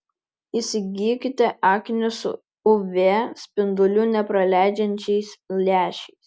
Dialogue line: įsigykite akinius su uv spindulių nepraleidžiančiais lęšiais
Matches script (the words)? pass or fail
pass